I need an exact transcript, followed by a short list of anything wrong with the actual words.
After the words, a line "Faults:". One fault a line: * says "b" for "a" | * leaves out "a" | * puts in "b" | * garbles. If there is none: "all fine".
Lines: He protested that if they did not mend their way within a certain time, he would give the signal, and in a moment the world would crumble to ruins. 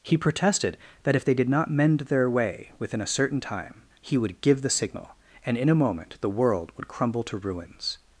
He protested that if they did not mend their way within a certain time, he would give the signal, and in a moment the world would crumble to ruins.
Faults:
all fine